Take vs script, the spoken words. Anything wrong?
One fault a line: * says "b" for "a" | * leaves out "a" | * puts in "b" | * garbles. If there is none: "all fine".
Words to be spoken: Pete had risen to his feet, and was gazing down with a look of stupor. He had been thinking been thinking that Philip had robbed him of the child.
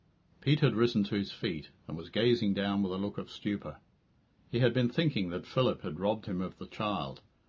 * leaves out "been thinking"